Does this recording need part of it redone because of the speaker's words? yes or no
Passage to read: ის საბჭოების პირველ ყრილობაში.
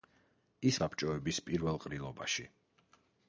no